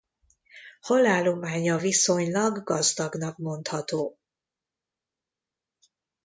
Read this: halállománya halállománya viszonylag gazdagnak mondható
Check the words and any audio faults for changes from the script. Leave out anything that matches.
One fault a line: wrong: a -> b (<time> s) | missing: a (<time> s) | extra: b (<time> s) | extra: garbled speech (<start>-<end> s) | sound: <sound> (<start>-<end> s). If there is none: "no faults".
missing: halállománya (1.8 s)